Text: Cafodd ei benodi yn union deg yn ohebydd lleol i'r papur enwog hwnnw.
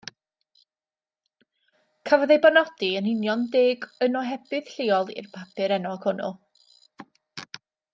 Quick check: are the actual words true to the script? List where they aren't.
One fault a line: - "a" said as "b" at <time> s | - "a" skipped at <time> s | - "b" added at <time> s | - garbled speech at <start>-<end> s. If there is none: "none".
none